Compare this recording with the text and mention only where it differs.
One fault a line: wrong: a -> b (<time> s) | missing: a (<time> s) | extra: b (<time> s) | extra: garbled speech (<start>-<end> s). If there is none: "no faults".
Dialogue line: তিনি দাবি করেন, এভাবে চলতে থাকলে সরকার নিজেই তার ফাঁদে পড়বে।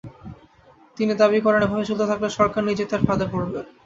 no faults